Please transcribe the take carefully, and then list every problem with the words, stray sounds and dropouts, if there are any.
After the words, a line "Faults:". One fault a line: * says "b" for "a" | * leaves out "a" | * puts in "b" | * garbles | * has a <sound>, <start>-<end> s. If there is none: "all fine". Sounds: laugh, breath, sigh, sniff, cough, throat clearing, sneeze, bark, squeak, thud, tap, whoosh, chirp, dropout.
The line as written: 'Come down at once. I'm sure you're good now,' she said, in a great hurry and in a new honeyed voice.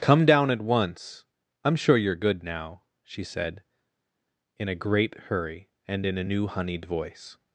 'Come down at once. I'm sure you're good now,' she said, in a great hurry and in a new honeyed voice.
Faults:
all fine